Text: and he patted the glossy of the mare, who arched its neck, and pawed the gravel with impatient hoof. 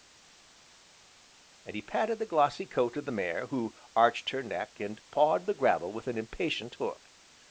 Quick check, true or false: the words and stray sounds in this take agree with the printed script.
false